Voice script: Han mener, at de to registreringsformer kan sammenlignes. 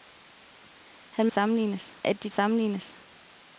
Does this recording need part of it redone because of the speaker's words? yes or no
yes